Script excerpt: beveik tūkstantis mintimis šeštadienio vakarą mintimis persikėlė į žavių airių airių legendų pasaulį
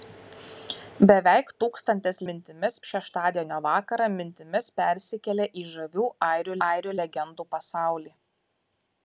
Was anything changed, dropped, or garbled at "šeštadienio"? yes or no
no